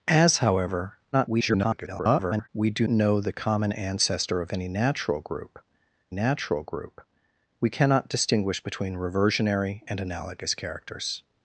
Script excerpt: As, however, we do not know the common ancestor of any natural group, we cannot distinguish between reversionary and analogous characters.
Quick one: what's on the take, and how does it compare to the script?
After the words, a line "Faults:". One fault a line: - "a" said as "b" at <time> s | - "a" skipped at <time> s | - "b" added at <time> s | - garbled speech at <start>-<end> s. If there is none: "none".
As, however, [garbled] we do know the common ancestor of any natural group natural group, we cannot distinguish between reversionary and analogous characters.
Faults:
- garbled speech at 1.1-2.5 s
- "not" skipped at 2.9 s
- "natural group" added at 6.1 s